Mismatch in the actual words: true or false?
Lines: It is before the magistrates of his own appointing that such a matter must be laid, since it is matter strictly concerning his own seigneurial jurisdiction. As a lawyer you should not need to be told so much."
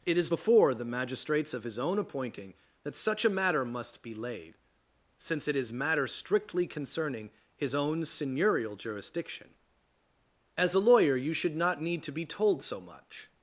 false